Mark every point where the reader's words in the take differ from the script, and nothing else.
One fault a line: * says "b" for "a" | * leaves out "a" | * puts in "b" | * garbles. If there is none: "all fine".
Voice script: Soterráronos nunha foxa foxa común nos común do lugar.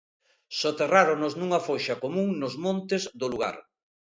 * leaves out "foxa"
* says "montes" for "común"